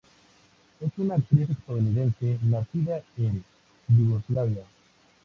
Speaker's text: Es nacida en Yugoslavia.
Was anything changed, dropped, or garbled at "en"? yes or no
no